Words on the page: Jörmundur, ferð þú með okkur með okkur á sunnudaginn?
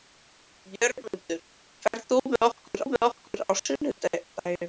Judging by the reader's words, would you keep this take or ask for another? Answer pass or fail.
pass